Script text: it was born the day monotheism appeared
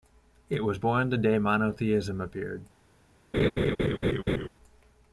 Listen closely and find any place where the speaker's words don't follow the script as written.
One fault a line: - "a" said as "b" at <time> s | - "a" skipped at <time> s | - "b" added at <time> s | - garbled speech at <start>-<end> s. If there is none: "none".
none